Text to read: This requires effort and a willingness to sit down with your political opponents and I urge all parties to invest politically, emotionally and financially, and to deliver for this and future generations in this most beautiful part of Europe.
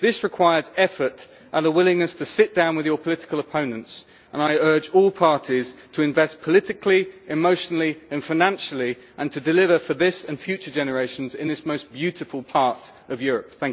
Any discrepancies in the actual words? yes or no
no